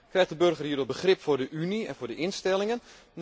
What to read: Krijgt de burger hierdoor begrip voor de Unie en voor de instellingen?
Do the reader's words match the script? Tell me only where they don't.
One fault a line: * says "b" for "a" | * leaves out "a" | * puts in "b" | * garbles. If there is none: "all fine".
all fine